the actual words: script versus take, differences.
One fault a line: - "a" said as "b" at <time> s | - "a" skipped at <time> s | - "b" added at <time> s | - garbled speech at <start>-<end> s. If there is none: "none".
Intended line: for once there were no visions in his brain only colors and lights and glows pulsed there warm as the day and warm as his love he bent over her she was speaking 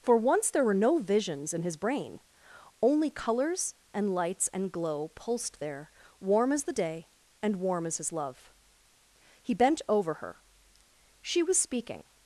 - "glows" said as "glow" at 4.7 s